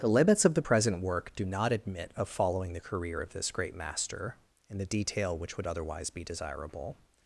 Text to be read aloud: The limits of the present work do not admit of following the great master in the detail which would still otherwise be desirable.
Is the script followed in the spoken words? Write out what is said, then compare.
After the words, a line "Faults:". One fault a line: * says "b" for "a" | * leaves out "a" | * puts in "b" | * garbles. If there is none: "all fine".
The limits of the present work do not admit of following the career of this great master in the detail which would otherwise be desirable.
Faults:
* puts in "career of this"
* leaves out "still"